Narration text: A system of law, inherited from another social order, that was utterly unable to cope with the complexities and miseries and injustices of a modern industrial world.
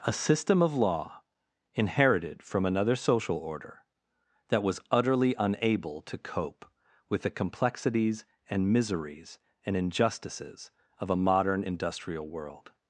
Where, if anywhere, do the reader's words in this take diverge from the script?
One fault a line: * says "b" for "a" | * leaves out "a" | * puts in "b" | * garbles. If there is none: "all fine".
all fine